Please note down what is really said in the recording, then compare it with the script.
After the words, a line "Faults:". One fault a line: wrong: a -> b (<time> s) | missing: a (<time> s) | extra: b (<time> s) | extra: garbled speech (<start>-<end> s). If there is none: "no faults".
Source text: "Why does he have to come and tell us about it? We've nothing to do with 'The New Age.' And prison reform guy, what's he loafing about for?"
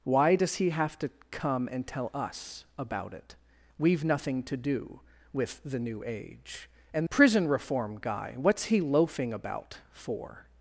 "Why does he have to come and tell us about it? We've nothing to do with 'The New Age.' And prison reform guy, what's he loafing about for?"
Faults:
no faults